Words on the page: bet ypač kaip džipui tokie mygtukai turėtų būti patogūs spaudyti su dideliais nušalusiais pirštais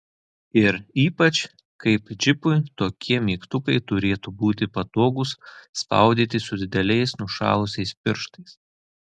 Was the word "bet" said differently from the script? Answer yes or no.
yes